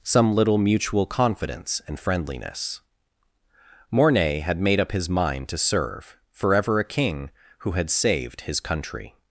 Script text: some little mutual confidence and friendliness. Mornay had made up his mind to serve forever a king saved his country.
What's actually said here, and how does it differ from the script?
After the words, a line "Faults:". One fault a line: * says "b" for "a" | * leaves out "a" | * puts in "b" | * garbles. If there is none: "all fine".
some little mutual confidence and friendliness. Mornay had made up his mind to serve forever a king who had saved his country.
Faults:
* puts in "who had"